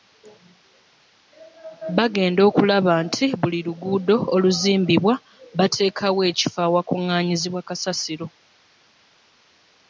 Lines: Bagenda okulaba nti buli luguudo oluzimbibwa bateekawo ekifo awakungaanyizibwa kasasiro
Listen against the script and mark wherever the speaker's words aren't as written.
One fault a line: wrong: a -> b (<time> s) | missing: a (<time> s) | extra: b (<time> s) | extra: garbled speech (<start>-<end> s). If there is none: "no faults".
no faults